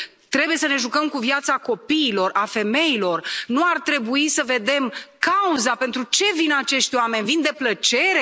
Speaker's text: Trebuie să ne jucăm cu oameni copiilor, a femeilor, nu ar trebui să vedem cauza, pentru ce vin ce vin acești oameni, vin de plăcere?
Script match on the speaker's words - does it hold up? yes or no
no